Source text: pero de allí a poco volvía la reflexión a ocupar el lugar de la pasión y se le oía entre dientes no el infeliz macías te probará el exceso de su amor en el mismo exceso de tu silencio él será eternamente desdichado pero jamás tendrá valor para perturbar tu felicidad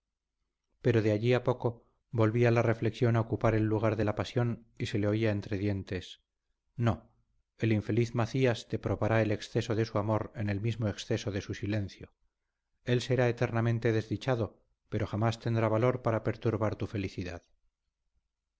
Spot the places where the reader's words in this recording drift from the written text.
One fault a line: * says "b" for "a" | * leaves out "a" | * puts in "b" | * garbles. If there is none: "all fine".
* says "su" for "tu"